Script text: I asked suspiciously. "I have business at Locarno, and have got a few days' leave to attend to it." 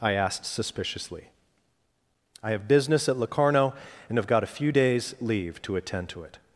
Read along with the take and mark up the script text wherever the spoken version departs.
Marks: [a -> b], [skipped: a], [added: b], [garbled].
I asked suspiciously. "I have business at Locarno, and have got a few days' leave to attend to it."